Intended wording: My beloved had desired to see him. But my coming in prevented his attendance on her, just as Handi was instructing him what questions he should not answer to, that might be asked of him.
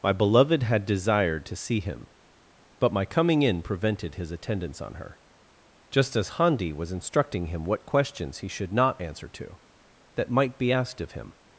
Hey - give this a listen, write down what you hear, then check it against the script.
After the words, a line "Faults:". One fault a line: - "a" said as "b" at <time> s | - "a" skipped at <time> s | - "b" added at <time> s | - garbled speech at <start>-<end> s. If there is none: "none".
My beloved had desired to see him. But my coming in prevented his attendance on her, just as Handi was instructing him what questions he should not answer to, that might be asked of him.
Faults:
none